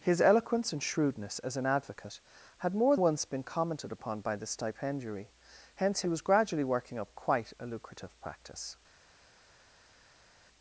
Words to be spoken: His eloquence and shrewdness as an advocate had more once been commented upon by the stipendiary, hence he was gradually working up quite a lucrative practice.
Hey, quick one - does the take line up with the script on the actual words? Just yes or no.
yes